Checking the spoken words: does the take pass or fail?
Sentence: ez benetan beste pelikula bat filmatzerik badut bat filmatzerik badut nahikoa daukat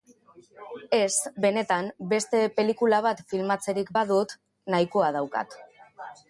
fail